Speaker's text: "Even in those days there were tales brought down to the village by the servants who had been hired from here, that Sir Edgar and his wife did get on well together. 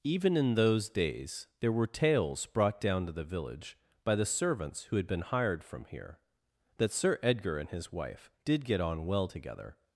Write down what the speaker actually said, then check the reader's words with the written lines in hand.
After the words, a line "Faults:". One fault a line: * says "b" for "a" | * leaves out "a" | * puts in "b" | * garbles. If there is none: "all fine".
"Even in those days there were tales brought down to the village by the servants who had been hired from here, that Sir Edgar and his wife did get on well together.
Faults:
all fine